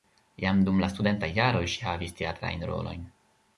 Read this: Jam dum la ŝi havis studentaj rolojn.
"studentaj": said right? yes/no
no